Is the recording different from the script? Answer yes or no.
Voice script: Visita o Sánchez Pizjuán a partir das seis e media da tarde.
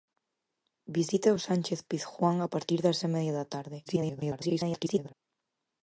yes